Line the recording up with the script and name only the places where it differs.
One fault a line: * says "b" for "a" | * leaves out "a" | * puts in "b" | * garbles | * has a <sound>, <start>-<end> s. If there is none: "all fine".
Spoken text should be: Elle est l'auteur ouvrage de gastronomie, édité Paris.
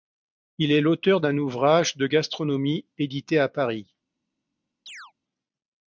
* says "Il" for "Elle"
* puts in "d'un"
* puts in "à"
* has a chirp, 4.9-5.1 s